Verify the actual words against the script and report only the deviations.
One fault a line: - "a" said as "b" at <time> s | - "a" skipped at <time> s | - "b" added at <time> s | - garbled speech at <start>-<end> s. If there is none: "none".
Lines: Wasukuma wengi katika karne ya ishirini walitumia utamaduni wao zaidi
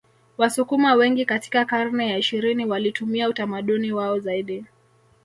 none